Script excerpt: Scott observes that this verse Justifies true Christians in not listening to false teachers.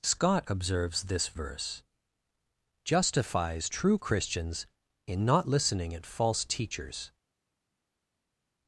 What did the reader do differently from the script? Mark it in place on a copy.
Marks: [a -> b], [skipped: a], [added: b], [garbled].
Scott observes [skipped: that] this verse Justifies true Christians in not listening [to -> at] false teachers.